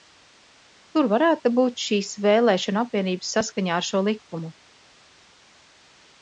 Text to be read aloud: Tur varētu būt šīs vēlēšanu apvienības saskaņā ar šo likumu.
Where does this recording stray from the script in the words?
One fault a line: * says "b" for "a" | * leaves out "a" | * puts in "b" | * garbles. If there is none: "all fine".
all fine